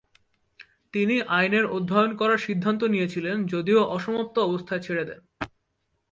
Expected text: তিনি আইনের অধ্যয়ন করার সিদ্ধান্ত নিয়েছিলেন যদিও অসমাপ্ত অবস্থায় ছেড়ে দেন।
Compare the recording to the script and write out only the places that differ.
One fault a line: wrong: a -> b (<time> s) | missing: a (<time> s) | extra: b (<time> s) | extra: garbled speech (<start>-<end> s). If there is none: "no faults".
no faults